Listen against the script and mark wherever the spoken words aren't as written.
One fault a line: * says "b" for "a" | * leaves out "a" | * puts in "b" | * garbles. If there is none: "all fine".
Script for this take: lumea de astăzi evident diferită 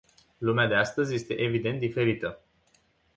* puts in "este"